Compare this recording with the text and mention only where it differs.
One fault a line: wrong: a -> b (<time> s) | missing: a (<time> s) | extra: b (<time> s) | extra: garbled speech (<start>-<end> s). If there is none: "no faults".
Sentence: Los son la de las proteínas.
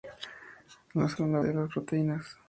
no faults